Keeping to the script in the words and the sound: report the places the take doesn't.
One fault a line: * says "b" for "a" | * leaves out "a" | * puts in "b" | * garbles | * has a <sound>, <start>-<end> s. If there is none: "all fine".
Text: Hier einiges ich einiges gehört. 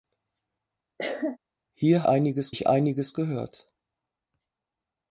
* has a cough, 1.0-1.4 s